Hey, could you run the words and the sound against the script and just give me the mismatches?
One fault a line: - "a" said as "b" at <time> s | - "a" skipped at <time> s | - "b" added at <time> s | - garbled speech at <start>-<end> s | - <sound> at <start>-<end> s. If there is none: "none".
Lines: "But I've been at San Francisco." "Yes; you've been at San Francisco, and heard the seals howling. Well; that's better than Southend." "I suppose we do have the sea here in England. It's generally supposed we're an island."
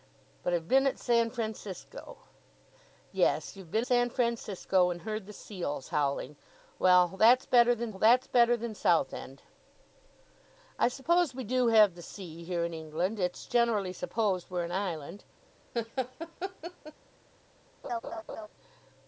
- "at" skipped at 3.9 s
- "that's better than" added at 8.0 s
- laugh at 15.7-16.9 s
- laugh at 17.8-18.5 s